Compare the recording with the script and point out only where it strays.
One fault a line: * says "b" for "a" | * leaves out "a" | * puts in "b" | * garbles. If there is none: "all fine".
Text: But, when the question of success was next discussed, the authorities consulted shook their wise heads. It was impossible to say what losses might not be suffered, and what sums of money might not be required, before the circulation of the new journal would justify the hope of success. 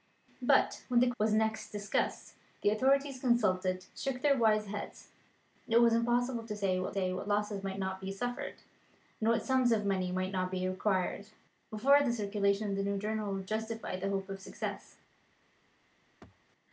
* leaves out "question of success"
* puts in "say what"